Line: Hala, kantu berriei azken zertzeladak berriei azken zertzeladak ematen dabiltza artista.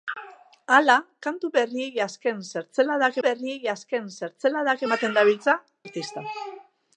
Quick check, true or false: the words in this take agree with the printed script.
true